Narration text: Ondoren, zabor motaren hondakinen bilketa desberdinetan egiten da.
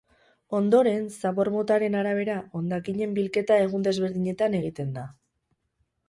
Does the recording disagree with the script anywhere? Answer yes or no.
yes